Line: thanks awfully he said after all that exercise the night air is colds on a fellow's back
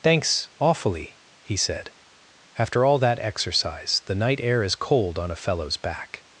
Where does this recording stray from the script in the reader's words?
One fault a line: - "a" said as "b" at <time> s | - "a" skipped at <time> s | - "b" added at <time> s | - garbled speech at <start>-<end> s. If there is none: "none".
- "colds" said as "cold" at 4.8 s